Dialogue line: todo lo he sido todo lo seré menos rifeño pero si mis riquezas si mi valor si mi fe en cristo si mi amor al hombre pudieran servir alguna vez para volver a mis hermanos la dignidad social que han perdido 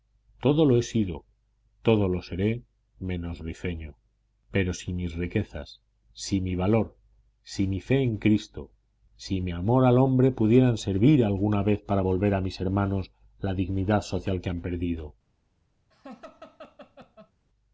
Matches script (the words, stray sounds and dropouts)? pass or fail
fail